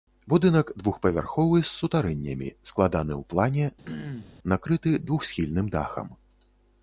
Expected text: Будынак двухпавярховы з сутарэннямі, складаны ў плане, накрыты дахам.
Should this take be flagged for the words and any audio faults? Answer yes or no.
yes